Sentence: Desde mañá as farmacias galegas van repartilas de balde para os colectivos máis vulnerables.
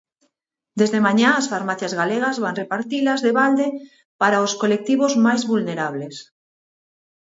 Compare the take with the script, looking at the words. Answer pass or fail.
pass